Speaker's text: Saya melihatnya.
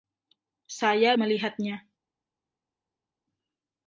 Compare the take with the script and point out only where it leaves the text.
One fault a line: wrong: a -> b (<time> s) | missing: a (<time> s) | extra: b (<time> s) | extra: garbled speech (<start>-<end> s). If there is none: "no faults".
no faults